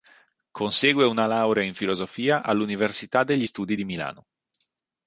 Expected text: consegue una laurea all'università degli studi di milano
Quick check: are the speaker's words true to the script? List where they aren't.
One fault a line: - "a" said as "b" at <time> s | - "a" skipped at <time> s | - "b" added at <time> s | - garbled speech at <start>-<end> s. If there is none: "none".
- "in filosofia" added at 1.6 s